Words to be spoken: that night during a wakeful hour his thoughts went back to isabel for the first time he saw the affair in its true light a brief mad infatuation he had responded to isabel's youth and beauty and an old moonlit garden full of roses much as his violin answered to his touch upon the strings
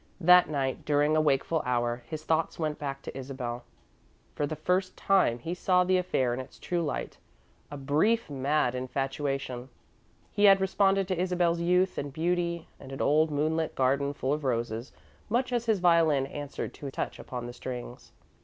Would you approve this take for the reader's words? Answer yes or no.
no